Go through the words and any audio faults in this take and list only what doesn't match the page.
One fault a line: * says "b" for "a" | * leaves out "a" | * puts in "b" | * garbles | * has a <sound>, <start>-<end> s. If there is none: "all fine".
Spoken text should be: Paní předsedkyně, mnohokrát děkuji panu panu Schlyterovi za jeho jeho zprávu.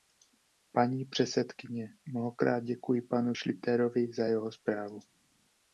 * leaves out "panu"
* leaves out "jeho"